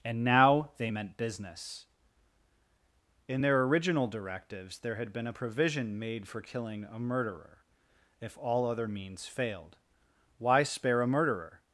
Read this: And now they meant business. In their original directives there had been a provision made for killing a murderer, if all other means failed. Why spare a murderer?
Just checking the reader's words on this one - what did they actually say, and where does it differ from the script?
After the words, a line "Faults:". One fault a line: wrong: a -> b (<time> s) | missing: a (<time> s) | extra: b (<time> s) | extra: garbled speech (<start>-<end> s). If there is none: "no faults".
And now they meant business. In their original directives there had been a provision made for killing a murderer, if all other means failed. Why spare a murderer?
Faults:
no faults